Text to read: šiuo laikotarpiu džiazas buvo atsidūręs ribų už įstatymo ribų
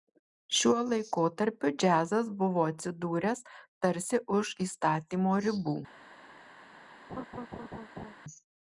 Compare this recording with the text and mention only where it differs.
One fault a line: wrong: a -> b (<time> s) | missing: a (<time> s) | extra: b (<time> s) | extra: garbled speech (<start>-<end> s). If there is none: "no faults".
wrong: ribų -> tarsi (3.9 s)